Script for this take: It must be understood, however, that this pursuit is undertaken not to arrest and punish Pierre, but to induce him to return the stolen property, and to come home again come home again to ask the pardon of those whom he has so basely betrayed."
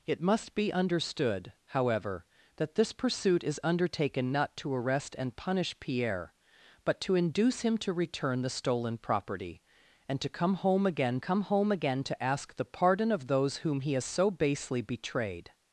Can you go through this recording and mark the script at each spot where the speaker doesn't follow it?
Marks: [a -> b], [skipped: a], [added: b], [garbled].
It must be understood, however, that this pursuit is undertaken not to arrest and punish Pierre, but to induce him to return the stolen property, and to come home again come home again to ask the pardon of those whom he has so basely betrayed."